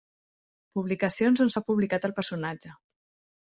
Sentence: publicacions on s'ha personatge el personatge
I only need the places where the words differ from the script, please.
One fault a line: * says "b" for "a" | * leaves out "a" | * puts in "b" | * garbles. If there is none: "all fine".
* says "publicat" for "personatge"